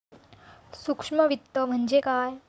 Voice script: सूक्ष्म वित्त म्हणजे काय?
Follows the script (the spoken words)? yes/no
yes